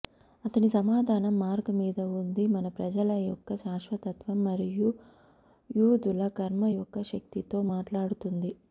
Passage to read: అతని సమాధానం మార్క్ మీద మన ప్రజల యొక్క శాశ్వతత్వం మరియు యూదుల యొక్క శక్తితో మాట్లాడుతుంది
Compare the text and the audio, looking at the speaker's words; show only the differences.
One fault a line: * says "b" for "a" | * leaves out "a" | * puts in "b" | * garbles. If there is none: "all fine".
* puts in "ఉంది"
* puts in "కర్మ"